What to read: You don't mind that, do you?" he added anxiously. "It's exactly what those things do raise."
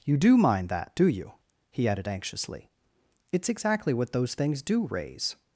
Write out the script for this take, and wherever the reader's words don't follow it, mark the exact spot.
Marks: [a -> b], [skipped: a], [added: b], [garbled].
You [don't -> do] mind that, do you?" he added anxiously. "It's exactly what those things do raise."